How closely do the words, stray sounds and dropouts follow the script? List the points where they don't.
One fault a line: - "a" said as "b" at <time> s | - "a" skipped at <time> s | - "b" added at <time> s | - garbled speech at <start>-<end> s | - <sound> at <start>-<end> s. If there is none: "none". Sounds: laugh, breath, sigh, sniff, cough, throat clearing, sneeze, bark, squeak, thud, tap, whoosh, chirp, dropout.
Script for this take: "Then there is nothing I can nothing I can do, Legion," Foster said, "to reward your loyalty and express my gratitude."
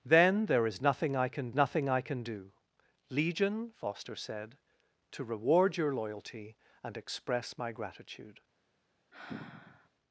- sigh at 9.1-9.9 s